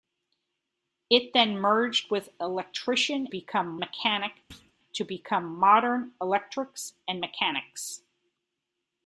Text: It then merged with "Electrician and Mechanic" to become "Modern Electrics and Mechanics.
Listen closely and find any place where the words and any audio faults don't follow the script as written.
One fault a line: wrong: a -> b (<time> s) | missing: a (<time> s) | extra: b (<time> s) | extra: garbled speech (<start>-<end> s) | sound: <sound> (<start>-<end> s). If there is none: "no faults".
wrong: and -> become (3.3 s)
sound: thud (4.5-4.7 s)